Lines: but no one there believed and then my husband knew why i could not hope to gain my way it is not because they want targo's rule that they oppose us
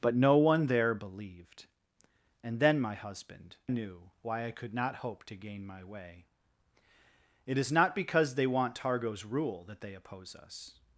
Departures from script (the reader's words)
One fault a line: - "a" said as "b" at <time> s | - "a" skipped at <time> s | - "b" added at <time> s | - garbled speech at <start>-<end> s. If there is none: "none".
none